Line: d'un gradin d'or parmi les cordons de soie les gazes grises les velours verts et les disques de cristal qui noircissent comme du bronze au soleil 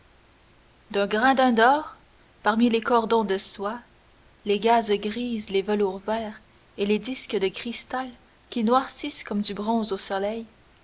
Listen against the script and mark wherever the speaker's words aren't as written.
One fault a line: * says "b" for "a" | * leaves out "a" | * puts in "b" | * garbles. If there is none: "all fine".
all fine